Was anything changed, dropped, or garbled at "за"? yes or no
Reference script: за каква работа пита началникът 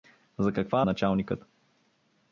no